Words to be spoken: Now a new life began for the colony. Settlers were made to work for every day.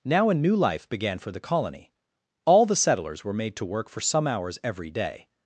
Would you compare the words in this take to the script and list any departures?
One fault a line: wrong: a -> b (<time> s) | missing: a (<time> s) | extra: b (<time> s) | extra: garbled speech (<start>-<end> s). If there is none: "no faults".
extra: All the (2.4 s)
extra: some hours (4.0 s)